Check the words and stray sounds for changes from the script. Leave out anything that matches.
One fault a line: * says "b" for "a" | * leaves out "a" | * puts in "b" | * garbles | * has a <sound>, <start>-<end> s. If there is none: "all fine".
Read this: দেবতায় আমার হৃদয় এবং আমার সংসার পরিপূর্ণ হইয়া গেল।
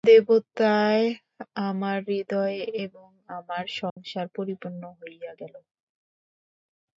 * has a dropout, 3.9-4.0 s